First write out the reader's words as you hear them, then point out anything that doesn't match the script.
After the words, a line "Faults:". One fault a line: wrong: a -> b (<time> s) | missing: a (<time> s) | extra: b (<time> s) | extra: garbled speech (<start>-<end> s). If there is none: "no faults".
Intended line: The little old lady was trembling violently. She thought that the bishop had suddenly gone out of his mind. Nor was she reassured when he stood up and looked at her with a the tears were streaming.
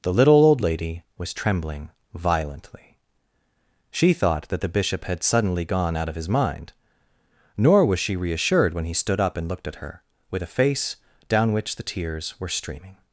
The little old lady was trembling violently. She thought that the bishop had suddenly gone out of his mind. Nor was she reassured when he stood up and looked at her with a face, down which the tears were streaming.
Faults:
extra: face down which (10.5 s)